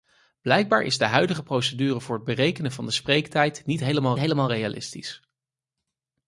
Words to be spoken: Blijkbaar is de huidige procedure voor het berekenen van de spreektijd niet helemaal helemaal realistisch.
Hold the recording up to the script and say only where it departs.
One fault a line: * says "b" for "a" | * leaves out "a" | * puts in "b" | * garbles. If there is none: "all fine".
all fine